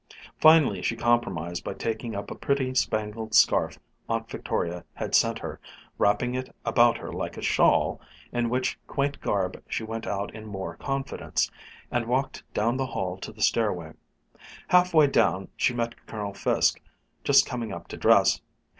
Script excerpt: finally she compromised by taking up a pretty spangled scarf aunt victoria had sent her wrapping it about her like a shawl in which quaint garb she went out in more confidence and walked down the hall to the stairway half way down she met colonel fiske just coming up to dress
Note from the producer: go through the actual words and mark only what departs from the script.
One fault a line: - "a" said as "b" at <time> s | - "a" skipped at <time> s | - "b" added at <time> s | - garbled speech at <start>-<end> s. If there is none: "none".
none